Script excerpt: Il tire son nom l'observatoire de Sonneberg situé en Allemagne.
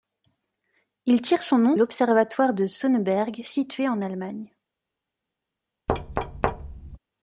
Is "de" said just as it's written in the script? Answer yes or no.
yes